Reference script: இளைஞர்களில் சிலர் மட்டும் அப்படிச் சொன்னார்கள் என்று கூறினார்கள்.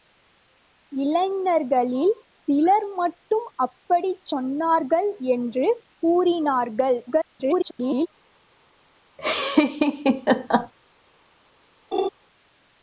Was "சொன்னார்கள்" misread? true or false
false